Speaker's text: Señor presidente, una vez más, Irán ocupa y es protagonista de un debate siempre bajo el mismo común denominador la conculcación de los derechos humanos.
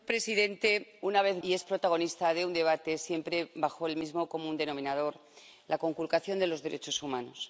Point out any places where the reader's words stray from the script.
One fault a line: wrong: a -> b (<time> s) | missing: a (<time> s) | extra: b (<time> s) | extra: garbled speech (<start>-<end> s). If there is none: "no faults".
missing: más Irán ocupa (1.4 s)